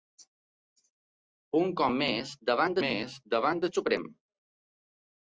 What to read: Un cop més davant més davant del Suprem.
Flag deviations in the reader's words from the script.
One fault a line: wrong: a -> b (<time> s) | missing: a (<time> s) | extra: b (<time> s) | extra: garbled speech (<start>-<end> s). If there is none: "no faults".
no faults